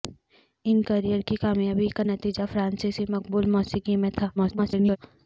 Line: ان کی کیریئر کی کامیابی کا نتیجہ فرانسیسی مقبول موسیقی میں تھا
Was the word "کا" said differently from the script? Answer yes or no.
no